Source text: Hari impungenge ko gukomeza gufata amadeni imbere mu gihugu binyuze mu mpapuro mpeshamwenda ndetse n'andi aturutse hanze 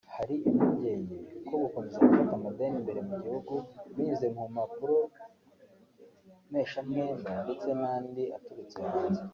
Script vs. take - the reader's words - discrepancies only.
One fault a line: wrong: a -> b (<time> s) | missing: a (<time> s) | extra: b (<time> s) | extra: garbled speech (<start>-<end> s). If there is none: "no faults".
no faults